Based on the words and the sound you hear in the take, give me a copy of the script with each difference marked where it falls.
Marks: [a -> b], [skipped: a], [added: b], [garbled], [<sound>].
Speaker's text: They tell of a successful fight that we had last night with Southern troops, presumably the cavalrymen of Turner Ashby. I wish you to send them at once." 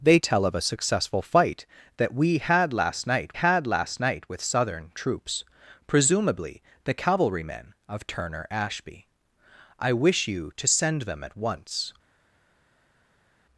They tell of a successful fight that we had last night [added: had last night] with Southern troops, presumably the cavalrymen of Turner Ashby. I wish you to send them at once."